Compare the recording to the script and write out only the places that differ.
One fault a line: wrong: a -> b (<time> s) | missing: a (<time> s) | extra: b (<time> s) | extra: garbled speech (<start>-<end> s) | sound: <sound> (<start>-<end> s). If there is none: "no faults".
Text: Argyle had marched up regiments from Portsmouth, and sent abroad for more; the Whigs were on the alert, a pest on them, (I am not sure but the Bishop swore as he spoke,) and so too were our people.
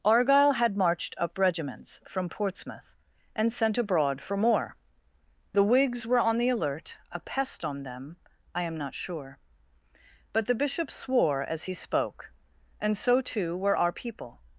no faults